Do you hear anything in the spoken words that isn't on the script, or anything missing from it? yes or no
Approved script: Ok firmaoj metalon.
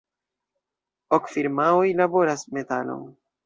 yes